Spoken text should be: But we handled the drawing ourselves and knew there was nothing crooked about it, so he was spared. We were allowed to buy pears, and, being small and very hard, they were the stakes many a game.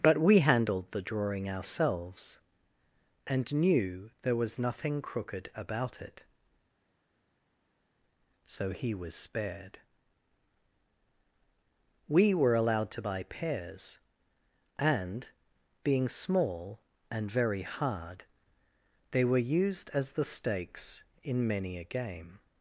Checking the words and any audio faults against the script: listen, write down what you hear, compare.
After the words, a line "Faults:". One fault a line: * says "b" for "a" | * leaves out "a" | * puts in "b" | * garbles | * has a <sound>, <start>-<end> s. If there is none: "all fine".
But we handled the drawing ourselves and knew there was nothing crooked about it, so he was spared. We were allowed to buy pears, and, being small and very hard, they were used as the stakes in many a game.
Faults:
* puts in "used as"
* puts in "in"